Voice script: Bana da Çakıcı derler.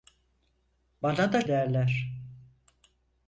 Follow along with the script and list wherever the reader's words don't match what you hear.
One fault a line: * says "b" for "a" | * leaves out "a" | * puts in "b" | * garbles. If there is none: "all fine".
* leaves out "Çakıcı"